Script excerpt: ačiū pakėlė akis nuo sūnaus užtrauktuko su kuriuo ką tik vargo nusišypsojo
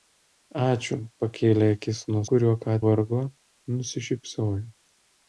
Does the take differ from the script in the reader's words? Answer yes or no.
yes